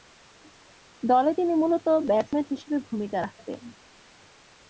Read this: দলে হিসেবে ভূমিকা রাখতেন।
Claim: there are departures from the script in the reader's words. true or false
true